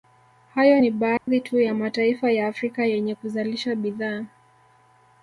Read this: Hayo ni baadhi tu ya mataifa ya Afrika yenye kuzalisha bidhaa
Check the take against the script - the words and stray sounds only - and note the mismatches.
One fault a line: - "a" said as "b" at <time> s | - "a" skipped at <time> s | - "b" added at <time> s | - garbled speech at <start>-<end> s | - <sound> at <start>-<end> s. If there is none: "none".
- dropout at 1.2-1.3 s